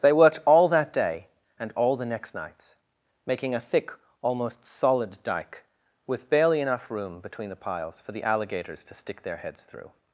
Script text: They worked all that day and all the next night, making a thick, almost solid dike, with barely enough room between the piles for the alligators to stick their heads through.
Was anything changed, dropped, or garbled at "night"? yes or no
yes